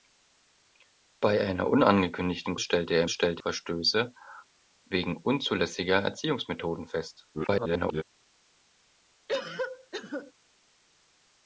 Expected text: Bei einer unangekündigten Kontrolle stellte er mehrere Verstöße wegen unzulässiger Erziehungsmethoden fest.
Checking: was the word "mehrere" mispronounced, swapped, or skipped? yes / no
yes